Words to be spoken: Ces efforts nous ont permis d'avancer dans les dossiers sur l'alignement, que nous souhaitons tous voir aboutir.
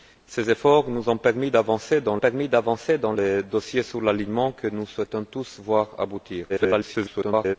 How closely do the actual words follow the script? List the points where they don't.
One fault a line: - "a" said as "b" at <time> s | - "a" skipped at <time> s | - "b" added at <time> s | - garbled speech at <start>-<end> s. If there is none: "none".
- "permis d'avancer dans" added at 2.2 s
- garbled speech at 6.5-7.6 s